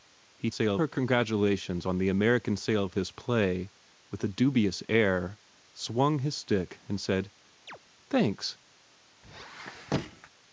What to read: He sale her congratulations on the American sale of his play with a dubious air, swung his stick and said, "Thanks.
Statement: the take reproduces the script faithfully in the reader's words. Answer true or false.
true